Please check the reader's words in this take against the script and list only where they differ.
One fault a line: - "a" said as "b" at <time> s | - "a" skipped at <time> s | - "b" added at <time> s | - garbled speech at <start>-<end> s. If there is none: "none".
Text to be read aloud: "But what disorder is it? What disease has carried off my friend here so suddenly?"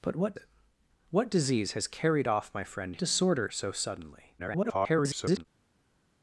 - "disorder is" skipped at 0.3 s
- "here" said as "disorder" at 3.0 s
- garbled speech at 4.4-5.5 s